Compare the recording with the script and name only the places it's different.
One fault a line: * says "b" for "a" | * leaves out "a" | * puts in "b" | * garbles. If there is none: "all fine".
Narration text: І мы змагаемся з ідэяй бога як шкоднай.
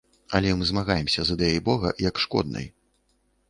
* says "Але" for "І"